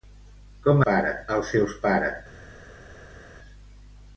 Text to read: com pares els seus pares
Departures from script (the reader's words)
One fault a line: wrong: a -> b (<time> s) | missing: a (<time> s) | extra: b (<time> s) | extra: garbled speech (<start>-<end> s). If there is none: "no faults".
no faults